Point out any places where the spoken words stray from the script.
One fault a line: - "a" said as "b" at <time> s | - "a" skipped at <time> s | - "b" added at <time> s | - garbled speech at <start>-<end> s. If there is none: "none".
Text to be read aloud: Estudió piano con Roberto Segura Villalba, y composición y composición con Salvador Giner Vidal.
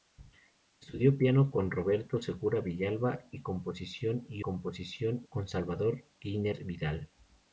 none